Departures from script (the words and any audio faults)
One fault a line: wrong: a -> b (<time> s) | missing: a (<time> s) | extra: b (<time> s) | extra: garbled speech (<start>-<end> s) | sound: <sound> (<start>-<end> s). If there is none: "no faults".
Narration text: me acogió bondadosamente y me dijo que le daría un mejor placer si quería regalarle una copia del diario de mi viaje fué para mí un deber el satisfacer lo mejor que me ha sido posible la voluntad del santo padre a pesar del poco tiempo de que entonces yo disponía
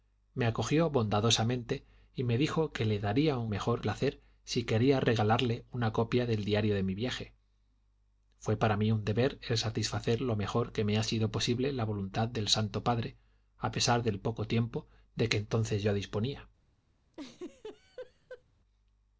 sound: laugh (17.1-18.4 s)